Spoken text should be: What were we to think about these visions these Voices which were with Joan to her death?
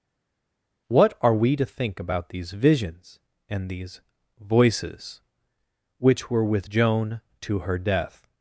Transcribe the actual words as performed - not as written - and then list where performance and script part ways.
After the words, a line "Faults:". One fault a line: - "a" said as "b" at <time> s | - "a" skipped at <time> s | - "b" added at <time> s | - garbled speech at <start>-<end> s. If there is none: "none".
What are we to think about these visions and these Voices which were with Joan to her death?
Faults:
- "were" said as "are" at 1.2 s
- "and" added at 3.5 s